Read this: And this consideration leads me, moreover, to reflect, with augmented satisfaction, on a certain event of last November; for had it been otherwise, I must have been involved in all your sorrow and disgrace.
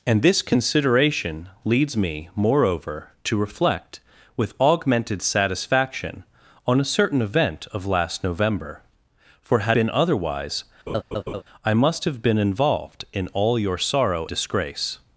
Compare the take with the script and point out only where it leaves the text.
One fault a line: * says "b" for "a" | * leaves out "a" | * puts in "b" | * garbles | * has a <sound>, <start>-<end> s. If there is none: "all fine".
* leaves out "it"
* has a laugh, 10.9-11.4 s
* leaves out "and"